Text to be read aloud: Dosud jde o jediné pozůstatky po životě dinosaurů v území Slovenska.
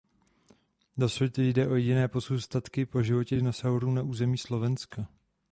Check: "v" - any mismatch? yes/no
yes